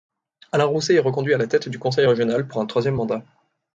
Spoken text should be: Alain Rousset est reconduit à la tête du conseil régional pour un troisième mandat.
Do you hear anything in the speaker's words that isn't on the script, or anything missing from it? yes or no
no